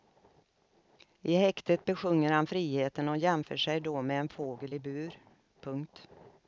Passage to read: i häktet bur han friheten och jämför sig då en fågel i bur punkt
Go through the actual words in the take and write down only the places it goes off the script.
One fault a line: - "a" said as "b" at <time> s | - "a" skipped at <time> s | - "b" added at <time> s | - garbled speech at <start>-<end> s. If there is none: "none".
- "bur" said as "besjunger" at 1.9 s
- "med" added at 4.0 s